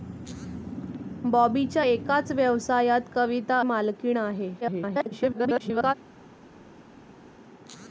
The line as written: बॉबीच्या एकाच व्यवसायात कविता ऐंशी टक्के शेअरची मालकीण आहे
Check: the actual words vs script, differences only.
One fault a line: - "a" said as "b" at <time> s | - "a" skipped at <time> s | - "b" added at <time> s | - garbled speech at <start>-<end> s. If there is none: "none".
- "ऐंशी टक्के शेअरची" skipped at 3.6 s
- garbled speech at 4.6-5.9 s